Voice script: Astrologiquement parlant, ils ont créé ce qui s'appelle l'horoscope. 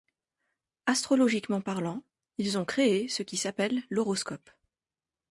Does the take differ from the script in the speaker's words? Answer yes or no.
no